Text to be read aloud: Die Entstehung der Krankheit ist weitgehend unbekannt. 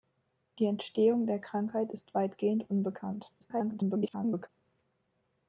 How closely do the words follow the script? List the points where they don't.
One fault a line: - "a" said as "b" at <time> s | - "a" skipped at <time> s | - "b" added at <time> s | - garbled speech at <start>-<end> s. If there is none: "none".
- garbled speech at 3.4-4.5 s